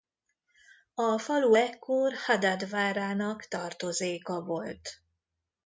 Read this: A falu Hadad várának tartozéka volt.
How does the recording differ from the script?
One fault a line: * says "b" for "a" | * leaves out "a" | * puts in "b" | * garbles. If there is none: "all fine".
* puts in "ekkor"